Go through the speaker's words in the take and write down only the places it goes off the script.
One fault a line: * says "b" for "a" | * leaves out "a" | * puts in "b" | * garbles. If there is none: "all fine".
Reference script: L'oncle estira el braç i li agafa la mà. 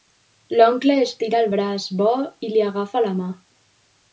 * puts in "bo"